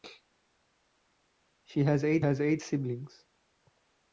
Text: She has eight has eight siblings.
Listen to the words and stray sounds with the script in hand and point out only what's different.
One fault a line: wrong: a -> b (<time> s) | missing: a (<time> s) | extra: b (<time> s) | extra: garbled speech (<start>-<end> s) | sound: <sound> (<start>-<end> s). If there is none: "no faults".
no faults